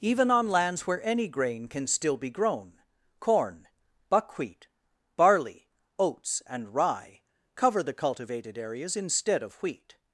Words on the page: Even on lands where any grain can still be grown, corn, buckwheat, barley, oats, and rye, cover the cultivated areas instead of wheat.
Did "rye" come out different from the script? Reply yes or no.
no